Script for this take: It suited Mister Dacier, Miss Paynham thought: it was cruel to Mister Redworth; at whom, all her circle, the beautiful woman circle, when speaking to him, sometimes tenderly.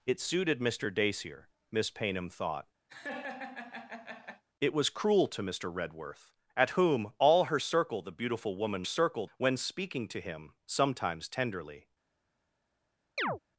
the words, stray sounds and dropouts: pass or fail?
fail